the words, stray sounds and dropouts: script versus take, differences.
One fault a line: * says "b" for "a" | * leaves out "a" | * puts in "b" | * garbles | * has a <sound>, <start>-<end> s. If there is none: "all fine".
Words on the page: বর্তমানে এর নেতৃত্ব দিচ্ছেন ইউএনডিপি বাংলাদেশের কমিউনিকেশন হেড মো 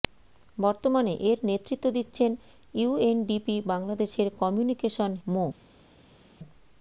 * leaves out "হেড"